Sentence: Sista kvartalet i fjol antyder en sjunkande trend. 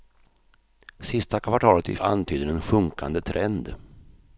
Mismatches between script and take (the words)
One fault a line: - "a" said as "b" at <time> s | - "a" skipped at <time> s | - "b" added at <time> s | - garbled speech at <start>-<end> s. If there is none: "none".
- "fjol" skipped at 1.9 s